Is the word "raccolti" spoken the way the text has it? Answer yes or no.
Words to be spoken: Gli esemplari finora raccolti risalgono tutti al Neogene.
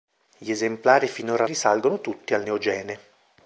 no